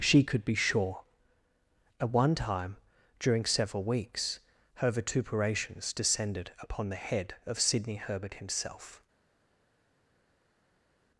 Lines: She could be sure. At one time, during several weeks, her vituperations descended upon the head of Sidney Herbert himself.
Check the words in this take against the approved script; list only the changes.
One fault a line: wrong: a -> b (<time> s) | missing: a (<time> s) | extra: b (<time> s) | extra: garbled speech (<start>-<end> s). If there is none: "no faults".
no faults